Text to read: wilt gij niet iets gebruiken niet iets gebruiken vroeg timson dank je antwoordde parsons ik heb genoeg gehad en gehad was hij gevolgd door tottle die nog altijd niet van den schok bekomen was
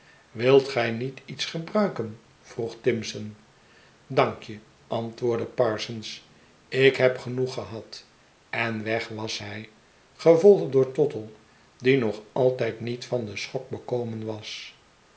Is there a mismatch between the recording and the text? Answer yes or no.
yes